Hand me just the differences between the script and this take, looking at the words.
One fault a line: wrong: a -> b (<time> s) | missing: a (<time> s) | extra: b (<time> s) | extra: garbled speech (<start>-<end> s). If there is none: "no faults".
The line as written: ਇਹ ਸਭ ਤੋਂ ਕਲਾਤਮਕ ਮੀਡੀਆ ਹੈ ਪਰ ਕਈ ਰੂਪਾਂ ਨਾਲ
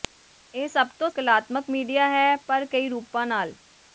no faults